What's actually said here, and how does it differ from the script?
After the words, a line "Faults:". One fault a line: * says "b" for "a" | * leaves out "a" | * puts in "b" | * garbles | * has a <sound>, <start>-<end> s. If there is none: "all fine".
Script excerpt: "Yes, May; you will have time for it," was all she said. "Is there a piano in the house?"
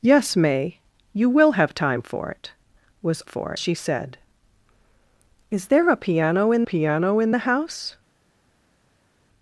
"Yes, May; you will have time for it," was for she said. "Is there a piano in piano in the house?"
Faults:
* says "for" for "all"
* puts in "piano in"